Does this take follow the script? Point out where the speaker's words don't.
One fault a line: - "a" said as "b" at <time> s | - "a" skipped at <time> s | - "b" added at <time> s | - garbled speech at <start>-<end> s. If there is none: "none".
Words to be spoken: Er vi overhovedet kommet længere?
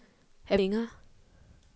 - "vi overhovedet kommet" skipped at 0.6 s